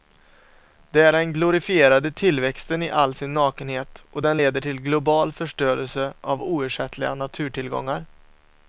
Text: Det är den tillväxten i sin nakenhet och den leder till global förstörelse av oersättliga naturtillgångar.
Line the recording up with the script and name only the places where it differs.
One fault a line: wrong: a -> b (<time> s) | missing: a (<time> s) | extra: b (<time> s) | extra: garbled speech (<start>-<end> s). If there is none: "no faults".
extra: glorifierade (1.3 s)
extra: all (2.9 s)